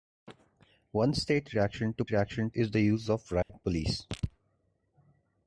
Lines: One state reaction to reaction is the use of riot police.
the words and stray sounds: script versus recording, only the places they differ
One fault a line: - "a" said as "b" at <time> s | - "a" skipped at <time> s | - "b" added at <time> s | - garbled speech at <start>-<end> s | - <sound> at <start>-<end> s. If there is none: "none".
- dropout at 3.4-3.5 s